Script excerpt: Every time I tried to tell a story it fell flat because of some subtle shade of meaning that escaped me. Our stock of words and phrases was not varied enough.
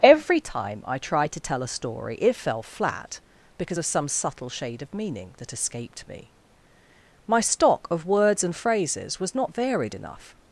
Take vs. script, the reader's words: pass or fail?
fail